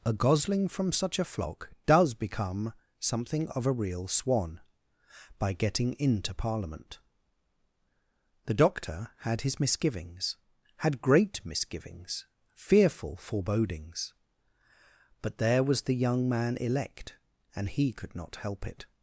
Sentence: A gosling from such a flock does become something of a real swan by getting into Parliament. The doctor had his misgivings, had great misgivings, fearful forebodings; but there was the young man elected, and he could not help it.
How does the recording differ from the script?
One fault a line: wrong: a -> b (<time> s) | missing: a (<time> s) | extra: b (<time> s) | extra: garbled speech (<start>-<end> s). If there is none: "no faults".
wrong: elected -> elect (16.6 s)